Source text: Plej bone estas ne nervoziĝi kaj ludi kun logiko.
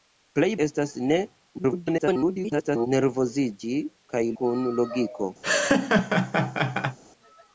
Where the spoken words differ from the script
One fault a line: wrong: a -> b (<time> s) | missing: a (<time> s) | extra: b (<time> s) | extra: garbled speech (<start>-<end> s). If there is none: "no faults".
missing: bone (0.5 s)
extra: garbled speech (1.6-2.9 s)
missing: ludi (4.2 s)